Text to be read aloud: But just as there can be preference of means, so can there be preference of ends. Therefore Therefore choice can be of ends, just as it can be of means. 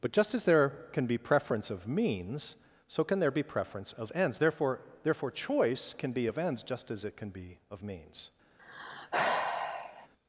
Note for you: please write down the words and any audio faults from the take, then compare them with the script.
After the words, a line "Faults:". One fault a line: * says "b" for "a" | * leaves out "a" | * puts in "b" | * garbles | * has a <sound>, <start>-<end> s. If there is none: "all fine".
But just as there can be preference of means, so can there be preference of ends. Therefore Therefore choice can be of ends, just as it can be of means.
Faults:
* has a sigh, 8.6-10.1 s